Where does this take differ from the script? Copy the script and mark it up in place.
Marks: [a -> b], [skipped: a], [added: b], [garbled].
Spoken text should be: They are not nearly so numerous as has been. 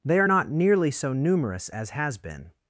They are not nearly so numerous as has been.